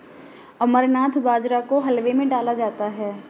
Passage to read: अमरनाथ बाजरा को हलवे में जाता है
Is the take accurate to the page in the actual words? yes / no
no